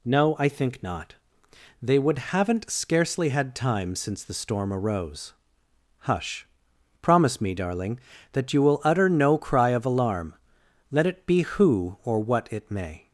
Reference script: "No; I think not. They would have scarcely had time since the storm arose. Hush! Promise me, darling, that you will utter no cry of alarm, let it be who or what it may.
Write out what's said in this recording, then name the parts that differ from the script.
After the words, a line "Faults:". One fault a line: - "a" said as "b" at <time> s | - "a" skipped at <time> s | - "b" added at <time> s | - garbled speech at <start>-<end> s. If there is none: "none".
"No; I think not. They would haven't scarcely had time since the storm arose. Hush! Promise me, darling, that you will utter no cry of alarm, let it be who or what it may.
Faults:
- "have" said as "haven't" at 2.2 s